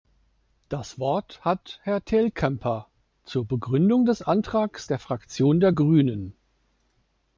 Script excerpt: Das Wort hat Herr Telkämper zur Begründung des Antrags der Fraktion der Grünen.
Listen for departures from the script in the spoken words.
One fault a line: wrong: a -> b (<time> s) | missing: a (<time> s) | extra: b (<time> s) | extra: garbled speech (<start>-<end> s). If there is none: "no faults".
no faults